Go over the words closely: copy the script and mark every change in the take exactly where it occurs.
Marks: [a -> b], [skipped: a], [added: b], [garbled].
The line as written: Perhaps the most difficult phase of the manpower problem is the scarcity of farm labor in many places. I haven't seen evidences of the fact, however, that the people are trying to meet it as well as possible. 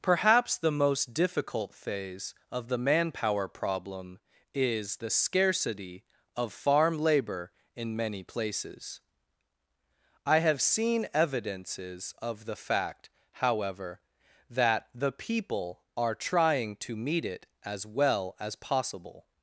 Perhaps the most difficult phase of the manpower problem is the scarcity of farm labor in many places. I [haven't -> have] seen evidences of the fact, however, that the people are trying to meet it as well as possible.